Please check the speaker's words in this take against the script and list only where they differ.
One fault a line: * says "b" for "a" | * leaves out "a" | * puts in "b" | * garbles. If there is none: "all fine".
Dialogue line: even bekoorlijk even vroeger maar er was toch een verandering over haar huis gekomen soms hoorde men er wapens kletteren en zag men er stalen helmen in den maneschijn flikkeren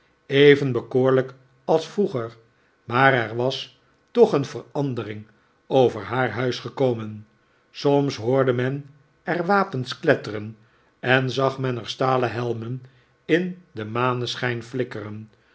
* says "als" for "even"